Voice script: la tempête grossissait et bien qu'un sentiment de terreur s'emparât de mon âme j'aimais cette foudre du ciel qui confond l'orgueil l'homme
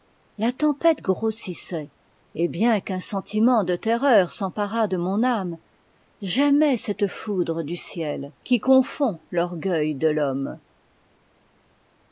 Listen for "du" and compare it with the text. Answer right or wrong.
right